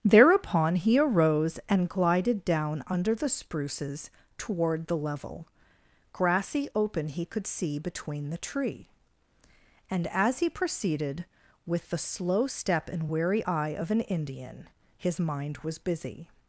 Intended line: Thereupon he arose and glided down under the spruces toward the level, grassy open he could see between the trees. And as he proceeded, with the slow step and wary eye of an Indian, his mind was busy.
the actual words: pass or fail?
fail